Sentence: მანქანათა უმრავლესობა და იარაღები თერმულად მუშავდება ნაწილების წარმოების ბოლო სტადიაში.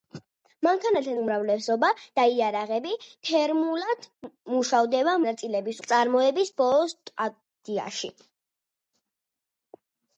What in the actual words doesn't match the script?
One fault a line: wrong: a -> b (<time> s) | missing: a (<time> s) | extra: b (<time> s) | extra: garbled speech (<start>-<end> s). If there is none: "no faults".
no faults